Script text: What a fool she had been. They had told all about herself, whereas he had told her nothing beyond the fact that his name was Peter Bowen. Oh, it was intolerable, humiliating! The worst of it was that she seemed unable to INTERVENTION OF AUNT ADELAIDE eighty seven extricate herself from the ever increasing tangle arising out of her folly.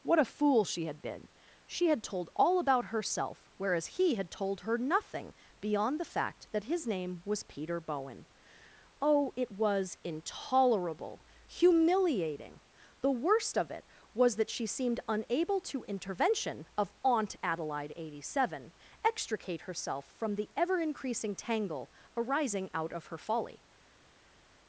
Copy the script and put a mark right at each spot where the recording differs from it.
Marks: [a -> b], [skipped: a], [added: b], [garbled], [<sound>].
What a fool she had been. [They -> She] had told all about herself, whereas he had told her nothing beyond the fact that his name was Peter Bowen. Oh, it was intolerable, humiliating! The worst of it was that she seemed unable to INTERVENTION OF AUNT ADELAIDE eighty seven extricate herself from the ever increasing tangle arising out of her folly.